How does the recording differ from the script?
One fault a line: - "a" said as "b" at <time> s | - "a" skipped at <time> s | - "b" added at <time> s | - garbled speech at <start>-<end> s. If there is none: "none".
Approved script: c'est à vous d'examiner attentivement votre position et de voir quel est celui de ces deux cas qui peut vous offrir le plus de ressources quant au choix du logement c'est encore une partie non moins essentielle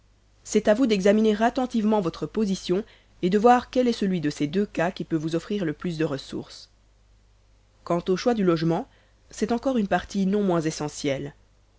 none